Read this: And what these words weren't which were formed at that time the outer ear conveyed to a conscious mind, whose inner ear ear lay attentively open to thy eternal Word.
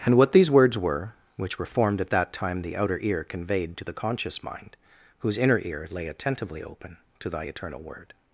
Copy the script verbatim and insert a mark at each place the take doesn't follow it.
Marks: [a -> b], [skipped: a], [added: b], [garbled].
And what these words [weren't -> were] which were formed at that time the outer ear conveyed to [a -> the] conscious mind, whose inner ear [skipped: ear] lay attentively open to thy eternal Word.